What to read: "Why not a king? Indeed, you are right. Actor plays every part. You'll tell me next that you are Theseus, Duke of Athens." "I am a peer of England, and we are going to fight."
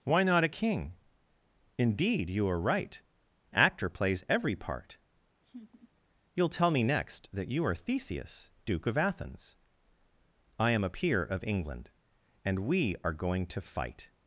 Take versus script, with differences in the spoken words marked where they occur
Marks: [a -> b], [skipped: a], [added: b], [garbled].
"Why not a king? Indeed, you are right. Actor plays every part. You'll tell me next that you are Theseus, Duke of Athens." "I am a peer of England, and we are going to fight."